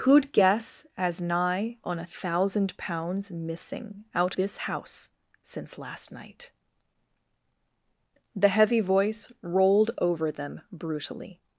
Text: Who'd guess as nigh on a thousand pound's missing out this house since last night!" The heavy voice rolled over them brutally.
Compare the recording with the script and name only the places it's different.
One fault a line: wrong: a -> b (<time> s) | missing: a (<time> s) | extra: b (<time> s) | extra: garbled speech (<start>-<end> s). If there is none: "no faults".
no faults